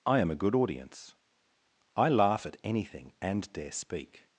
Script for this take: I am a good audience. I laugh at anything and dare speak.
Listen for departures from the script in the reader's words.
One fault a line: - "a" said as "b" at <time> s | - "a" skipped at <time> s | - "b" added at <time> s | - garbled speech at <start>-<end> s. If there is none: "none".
none